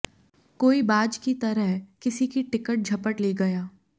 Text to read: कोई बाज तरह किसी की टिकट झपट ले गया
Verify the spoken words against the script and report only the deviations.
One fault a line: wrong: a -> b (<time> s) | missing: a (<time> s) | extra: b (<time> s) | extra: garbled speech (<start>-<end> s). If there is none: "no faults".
extra: की (1.2 s)